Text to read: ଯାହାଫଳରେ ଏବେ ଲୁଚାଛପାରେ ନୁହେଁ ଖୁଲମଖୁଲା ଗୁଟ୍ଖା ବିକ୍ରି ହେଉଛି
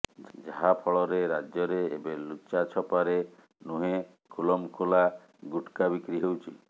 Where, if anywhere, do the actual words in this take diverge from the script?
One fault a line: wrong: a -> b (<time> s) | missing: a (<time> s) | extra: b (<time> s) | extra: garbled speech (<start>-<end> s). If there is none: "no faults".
extra: ରାଜ୍ୟରେ (1.3 s)